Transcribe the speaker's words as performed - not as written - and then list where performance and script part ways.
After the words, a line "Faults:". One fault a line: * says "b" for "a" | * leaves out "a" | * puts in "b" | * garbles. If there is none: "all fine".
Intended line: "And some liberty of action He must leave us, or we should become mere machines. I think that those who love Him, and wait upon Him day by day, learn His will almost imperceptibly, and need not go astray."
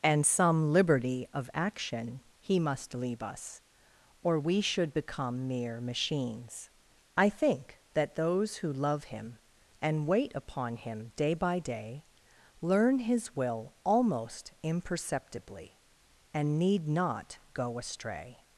"And some liberty of action He must leave us, or we should become mere machines. I think that those who love Him, and wait upon Him day by day, learn His will almost imperceptibly, and need not go astray."
Faults:
all fine